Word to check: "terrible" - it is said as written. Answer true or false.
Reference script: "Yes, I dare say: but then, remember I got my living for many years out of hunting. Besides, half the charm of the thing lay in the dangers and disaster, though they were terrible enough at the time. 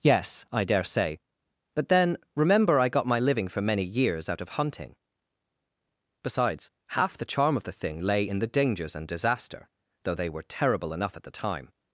true